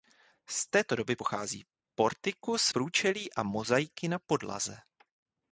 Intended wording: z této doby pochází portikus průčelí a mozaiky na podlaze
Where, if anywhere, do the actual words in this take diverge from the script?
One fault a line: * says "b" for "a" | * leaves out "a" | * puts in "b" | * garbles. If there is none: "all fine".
all fine